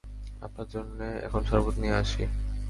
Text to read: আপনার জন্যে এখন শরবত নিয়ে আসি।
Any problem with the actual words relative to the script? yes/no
no